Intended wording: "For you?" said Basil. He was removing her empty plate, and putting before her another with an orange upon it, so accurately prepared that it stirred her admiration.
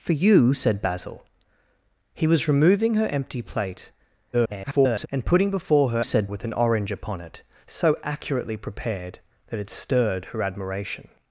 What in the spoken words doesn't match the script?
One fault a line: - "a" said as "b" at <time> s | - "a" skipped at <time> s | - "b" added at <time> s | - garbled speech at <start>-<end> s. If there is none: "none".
- garbled speech at 4.3-5.1 s
- "another" said as "said" at 6.0 s